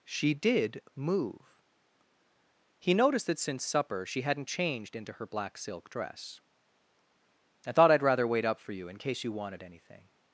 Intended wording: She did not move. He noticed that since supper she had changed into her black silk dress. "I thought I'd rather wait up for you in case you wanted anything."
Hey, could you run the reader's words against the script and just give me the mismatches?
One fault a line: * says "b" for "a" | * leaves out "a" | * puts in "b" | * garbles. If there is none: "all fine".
* leaves out "not"
* says "hadn't" for "had"